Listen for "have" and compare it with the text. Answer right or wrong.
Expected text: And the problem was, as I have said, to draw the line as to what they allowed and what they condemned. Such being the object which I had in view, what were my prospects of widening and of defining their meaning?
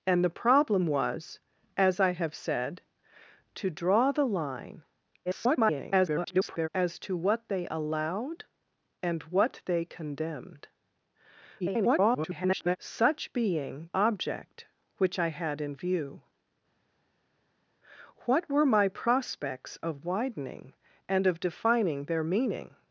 right